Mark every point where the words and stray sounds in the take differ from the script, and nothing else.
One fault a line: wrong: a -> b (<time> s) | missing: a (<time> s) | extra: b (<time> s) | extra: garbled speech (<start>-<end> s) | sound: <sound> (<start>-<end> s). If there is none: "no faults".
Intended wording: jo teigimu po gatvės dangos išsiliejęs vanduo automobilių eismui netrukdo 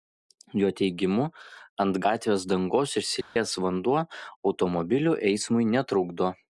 wrong: po -> ant (1.8 s)
sound: dropout (3.2-3.4 s)